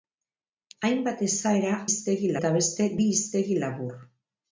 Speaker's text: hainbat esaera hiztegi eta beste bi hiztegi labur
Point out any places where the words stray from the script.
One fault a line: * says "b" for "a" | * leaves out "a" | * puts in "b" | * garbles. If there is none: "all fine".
all fine